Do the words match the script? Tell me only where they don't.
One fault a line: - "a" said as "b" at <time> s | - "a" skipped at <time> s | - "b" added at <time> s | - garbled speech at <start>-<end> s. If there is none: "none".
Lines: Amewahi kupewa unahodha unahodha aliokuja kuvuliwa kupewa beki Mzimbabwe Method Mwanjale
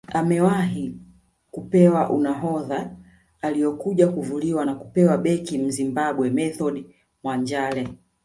- "unahodha" skipped at 3.0 s
- "na" added at 4.6 s